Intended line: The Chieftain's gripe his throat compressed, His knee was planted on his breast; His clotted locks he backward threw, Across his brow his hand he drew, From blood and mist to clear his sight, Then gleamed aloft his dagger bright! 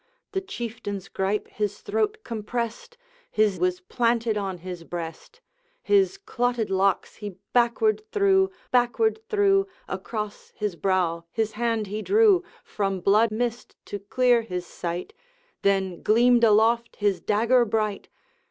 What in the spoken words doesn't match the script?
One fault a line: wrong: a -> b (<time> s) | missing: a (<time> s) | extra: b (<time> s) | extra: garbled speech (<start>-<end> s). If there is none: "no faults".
missing: knee (3.6 s)
extra: backward threw (8.7 s)
missing: and (13.3 s)